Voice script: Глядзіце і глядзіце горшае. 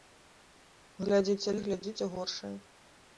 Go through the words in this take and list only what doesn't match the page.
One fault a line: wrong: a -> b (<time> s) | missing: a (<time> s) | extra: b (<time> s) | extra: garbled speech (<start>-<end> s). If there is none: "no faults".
no faults